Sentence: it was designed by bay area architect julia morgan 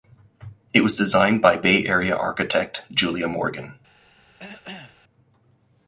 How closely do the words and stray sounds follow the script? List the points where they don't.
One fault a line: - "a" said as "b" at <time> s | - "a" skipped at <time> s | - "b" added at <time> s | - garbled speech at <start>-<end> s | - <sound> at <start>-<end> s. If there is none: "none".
- cough at 4.4-5.0 s